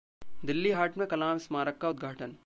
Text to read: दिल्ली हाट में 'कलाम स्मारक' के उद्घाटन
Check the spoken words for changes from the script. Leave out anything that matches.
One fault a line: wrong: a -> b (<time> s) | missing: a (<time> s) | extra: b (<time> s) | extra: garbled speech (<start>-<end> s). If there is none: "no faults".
wrong: के -> का (1.8 s)